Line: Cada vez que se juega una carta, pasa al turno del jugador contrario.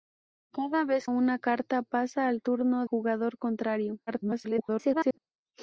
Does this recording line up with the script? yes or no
no